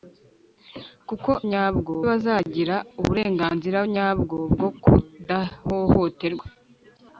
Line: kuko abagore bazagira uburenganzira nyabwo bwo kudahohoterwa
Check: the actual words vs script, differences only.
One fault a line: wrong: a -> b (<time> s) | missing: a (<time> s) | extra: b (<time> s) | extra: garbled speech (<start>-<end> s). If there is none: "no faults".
wrong: abagore -> nyabwo (1.5 s)